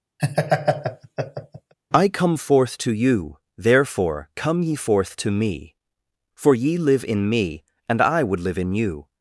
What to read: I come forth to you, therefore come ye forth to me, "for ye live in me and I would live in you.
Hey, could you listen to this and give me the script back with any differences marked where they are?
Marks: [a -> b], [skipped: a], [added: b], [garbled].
I come forth to you, therefore come ye forth to me, "for ye live in me and I would live in you.